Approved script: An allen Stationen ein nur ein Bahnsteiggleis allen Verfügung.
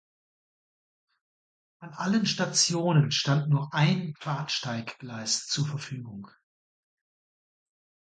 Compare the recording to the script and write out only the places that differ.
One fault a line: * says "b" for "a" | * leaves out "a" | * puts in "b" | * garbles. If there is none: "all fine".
* says "stand" for "ein"
* says "zur" for "allen"